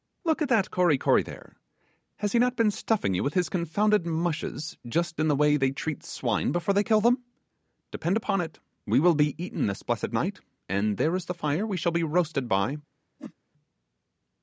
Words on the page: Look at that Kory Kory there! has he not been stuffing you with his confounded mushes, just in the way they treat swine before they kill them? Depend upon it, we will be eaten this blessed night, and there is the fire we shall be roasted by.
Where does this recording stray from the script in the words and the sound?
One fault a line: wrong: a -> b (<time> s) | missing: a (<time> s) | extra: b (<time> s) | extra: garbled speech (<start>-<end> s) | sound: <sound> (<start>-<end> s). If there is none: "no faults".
sound: whoosh (13.2-13.3 s)